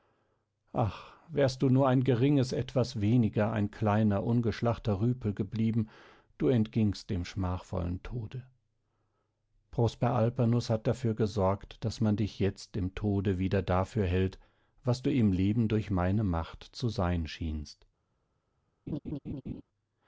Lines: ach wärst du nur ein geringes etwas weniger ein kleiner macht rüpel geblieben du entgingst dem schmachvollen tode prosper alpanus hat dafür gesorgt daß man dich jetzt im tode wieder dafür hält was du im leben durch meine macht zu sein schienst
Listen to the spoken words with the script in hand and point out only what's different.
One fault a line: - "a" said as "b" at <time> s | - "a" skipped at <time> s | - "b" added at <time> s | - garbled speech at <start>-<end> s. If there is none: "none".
- "macht" said as "ungeschlachter" at 4.2 s